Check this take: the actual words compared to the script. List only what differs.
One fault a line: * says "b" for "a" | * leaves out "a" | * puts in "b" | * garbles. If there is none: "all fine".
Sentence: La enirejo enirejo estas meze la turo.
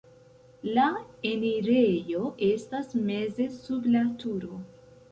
* leaves out "enirejo"
* puts in "sub"